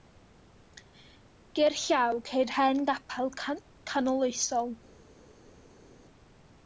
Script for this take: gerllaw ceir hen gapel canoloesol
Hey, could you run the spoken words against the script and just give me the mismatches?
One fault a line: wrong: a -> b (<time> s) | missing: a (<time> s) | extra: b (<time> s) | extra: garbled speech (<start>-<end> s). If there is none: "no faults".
no faults